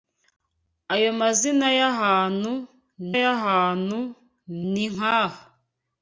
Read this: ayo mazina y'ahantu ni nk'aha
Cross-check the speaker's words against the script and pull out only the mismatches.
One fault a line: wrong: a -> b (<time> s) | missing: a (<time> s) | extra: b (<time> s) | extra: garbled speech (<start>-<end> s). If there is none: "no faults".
extra: y'ahantu (3.2 s)